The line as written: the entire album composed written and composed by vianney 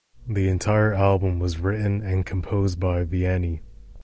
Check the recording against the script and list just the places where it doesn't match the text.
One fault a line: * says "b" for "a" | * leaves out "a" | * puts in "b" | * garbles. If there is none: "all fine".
* says "was" for "composed"